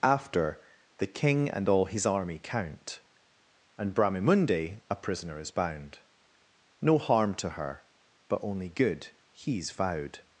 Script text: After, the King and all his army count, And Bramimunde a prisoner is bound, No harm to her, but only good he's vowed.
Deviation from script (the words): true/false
false